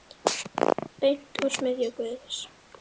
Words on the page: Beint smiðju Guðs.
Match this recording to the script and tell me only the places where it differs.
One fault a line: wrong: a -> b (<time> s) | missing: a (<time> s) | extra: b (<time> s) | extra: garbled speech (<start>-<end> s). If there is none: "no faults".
extra: úr (1.5 s)